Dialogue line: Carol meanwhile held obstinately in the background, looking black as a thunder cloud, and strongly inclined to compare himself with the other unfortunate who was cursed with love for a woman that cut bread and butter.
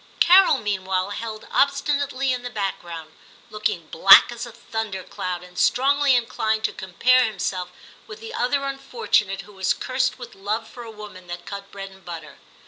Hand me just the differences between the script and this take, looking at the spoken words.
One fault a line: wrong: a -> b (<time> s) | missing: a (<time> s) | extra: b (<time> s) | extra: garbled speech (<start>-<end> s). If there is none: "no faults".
no faults